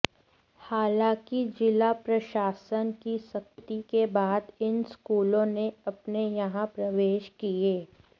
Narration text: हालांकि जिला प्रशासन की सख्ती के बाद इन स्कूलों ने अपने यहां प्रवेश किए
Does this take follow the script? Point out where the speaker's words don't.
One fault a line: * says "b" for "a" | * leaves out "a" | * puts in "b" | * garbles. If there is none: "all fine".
all fine